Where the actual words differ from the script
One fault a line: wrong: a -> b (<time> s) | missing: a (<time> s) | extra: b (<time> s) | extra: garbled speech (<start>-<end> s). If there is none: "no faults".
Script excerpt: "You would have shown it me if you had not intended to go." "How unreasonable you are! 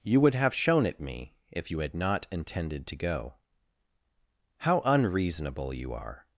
no faults